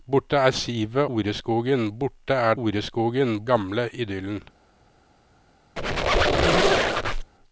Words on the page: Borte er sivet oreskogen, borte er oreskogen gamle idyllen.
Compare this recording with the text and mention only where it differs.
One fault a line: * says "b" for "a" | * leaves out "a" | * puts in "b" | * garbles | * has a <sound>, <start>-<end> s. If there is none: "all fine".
* has a squeak, 5.8-7.3 s